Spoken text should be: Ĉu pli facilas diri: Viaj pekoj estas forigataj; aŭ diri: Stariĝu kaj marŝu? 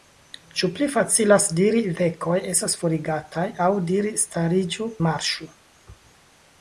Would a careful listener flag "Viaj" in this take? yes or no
yes